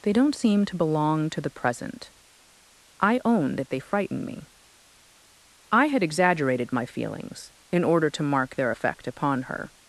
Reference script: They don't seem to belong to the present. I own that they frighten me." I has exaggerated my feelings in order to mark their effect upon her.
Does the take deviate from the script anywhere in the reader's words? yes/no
yes